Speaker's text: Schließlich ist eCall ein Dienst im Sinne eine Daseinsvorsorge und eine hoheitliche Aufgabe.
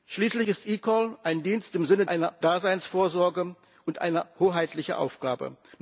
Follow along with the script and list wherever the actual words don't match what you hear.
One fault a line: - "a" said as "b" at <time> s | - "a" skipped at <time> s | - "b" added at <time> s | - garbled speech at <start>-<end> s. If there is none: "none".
none